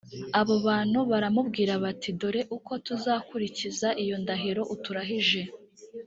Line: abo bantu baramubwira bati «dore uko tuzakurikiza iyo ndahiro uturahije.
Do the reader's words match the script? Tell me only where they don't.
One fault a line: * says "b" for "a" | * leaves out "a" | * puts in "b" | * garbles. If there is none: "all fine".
all fine